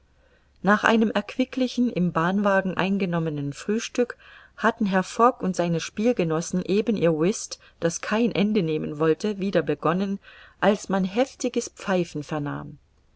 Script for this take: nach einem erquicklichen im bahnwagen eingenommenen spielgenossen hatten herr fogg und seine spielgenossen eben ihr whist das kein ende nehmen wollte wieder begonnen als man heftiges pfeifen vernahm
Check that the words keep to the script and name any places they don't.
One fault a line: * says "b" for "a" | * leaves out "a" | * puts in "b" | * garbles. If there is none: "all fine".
* says "frühstück" for "spielgenossen"